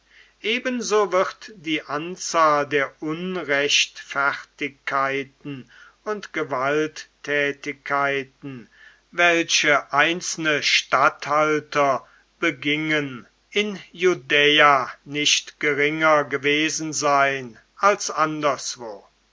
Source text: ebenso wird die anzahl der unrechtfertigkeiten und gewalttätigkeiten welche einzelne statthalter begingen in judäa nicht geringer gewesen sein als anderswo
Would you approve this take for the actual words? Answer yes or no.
yes